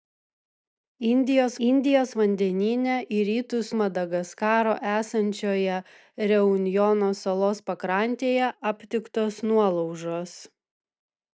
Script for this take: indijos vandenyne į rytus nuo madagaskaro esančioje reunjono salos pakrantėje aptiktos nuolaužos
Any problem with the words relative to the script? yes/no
yes